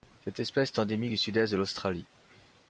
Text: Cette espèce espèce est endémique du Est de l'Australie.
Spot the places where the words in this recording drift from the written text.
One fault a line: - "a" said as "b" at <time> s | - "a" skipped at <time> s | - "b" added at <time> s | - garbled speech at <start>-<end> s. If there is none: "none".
- "espèce" skipped at 0.7 s
- "Sud" added at 1.2 s